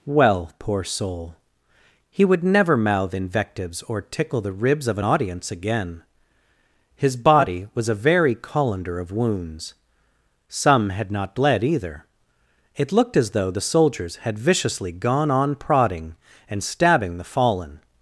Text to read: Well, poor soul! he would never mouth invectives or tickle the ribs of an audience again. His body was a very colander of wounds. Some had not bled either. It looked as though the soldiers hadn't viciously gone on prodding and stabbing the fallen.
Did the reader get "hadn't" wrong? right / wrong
wrong